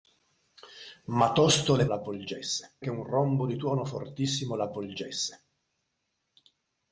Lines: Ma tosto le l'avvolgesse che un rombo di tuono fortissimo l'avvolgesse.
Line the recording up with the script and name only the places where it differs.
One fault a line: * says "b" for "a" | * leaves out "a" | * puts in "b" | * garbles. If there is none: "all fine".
all fine